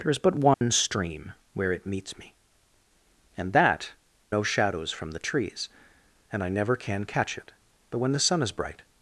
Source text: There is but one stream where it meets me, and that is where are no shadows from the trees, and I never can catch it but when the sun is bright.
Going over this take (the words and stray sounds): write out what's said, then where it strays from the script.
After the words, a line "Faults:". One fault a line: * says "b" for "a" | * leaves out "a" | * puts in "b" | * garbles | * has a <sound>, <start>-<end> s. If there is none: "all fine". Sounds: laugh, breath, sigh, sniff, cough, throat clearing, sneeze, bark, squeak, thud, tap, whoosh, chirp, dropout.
There is but one stream where it meets me, and that no shadows from the trees, and I never can catch it but when the sun is bright.
Faults:
* has a dropout, 0.5-0.6 s
* leaves out "is where are"